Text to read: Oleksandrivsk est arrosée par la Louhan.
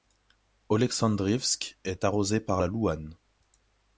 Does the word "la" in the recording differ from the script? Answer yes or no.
no